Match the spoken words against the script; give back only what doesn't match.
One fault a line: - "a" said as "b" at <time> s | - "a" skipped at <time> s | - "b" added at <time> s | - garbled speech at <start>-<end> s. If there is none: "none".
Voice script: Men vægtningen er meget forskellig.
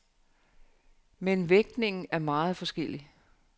none